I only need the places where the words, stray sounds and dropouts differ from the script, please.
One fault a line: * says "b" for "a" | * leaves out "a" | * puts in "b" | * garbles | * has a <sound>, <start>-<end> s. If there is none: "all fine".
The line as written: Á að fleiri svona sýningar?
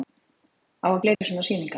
* has a dropout, 1.1-1.2 s